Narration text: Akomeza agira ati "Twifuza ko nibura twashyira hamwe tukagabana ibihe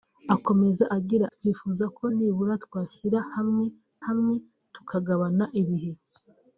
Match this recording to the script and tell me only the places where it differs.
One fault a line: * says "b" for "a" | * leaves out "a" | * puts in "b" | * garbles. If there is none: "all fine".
* leaves out "ati"
* puts in "hamwe"